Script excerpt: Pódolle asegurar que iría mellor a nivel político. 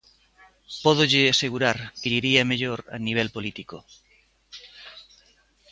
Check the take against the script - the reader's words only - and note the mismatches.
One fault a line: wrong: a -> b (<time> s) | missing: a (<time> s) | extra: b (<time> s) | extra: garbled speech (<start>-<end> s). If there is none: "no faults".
extra: lle (2.1 s)